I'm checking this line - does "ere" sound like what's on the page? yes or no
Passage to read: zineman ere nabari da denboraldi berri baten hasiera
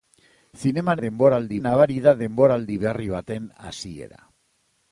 no